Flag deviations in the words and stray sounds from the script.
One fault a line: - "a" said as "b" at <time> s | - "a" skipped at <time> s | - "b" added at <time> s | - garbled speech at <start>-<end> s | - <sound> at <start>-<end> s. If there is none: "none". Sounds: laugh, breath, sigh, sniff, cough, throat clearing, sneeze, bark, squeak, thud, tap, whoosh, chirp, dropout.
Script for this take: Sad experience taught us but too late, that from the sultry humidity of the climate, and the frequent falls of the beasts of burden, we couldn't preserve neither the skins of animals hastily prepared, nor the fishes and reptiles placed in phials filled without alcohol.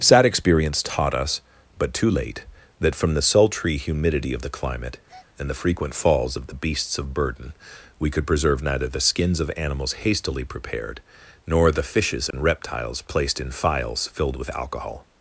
- breath at 5.1-5.3 s
- "couldn't" said as "could" at 8.1 s
- dropout at 12.3-12.3 s
- "without" said as "with" at 14.3 s